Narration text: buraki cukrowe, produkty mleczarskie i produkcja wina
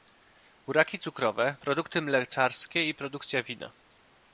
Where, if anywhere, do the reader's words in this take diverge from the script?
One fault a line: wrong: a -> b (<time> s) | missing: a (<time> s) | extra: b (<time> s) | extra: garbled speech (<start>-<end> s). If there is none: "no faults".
no faults